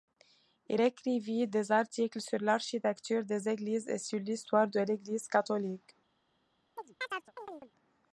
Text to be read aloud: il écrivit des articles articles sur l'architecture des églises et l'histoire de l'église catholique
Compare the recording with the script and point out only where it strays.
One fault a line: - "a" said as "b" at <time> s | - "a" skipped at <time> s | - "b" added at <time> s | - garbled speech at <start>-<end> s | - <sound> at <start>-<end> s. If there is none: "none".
- "articles" skipped at 2.2 s
- "sur" added at 4.0 s
- chirp at 6.8-7.7 s